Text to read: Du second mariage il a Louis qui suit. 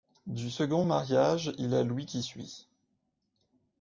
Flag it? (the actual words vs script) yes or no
no